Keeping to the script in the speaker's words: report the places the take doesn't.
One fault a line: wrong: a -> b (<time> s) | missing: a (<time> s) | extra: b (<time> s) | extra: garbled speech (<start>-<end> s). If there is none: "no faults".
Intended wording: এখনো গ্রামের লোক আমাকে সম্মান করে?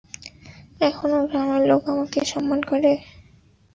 no faults